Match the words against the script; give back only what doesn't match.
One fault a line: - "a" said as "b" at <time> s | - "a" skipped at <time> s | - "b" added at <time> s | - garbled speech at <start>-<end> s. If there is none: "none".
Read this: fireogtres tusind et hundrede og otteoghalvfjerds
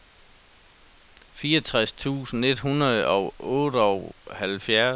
none